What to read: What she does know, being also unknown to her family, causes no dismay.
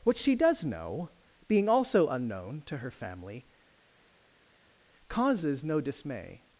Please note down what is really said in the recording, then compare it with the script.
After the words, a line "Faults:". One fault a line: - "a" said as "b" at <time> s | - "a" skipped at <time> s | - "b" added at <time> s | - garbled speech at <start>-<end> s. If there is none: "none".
What she does know, being also unknown to her family, causes no dismay.
Faults:
none